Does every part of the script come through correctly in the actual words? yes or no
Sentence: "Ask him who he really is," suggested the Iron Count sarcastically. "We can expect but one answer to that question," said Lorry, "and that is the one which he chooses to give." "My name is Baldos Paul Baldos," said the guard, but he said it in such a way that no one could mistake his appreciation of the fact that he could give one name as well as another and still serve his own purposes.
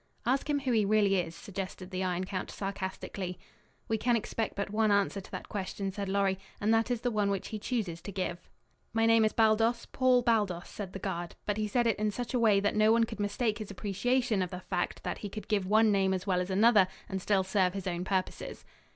yes